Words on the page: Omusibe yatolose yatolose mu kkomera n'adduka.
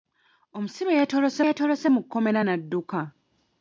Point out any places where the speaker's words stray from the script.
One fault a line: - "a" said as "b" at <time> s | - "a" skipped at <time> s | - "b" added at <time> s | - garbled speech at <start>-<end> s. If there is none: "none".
none